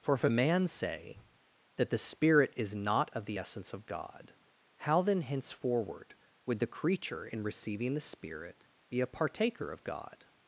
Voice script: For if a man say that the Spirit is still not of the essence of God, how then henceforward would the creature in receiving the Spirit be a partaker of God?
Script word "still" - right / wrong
wrong